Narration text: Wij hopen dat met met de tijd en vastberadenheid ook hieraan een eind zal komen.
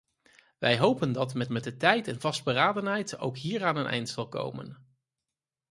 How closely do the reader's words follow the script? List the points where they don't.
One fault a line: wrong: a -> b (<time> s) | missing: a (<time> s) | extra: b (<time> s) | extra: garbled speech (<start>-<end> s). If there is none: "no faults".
no faults